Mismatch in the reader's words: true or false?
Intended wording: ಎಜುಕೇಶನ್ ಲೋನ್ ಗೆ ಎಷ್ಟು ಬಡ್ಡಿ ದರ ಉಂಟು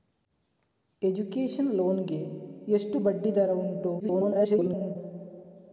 true